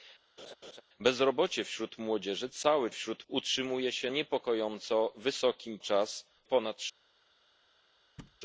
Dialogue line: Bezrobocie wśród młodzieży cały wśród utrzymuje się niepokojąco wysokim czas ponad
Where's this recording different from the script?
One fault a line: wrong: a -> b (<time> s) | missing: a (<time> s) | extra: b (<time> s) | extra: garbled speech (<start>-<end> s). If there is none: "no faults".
no faults